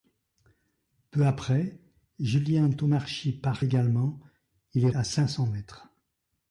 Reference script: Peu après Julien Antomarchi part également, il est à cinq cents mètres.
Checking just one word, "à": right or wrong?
right